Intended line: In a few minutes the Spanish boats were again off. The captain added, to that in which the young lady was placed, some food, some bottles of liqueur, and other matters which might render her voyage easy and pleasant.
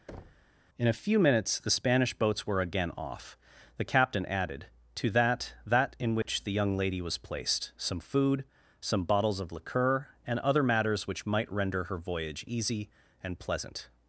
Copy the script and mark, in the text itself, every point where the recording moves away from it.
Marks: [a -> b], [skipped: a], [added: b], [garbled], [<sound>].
[thud] In a few minutes the Spanish boats were again off. The captain added, to that [added: that] in which [dropout] the young lady was placed, some food, some bottles of liqueur, and other matters which might render her voyage easy and pleasant.